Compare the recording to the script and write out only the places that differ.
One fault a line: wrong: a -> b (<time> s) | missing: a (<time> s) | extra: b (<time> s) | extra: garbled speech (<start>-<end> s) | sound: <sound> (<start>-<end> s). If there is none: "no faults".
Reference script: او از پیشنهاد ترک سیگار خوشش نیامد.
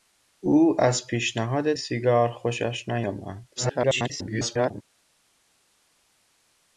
missing: ترک (1.7 s)
extra: garbled speech (3.6-4.8 s)